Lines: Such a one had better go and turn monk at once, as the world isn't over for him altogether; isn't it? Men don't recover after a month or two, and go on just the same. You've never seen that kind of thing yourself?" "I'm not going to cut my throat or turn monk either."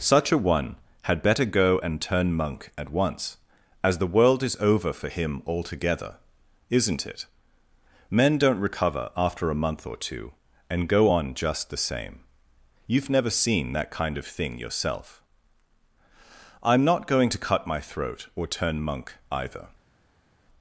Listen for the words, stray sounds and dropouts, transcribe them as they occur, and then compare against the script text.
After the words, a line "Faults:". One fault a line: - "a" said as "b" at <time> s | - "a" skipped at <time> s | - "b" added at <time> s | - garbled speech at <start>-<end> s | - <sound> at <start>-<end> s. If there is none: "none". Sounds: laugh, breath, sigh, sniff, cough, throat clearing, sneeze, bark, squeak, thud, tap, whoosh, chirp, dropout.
Such a one had better go and turn monk at once, as the world is over for him altogether; isn't it? Men don't recover after a month or two, and go on just the same. You've never seen that kind of thing yourself?" "I'm not going to cut my throat or turn monk either."
Faults:
- "isn't" said as "is" at 4.4 s